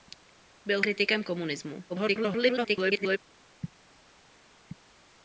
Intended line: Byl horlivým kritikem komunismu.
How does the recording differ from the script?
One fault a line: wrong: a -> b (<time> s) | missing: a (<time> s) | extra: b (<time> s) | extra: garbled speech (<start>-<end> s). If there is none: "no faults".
missing: horlivým (0.8 s)
extra: garbled speech (1.9-3.2 s)